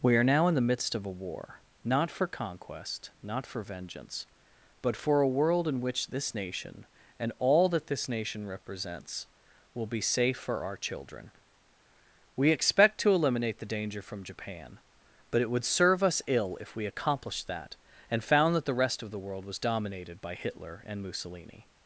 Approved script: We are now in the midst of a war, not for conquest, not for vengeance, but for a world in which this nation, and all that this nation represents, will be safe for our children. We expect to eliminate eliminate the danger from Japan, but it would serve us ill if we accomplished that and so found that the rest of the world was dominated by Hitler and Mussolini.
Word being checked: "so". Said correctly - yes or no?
no